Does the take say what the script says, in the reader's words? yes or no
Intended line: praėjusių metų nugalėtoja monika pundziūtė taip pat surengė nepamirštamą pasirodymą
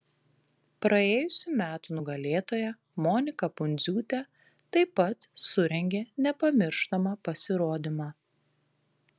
yes